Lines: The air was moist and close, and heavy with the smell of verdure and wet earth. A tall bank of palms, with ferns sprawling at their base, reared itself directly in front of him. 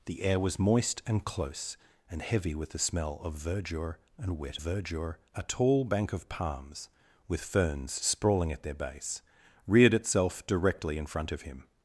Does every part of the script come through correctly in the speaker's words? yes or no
no